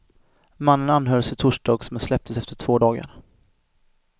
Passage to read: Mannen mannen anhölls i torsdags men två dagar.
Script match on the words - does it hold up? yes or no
no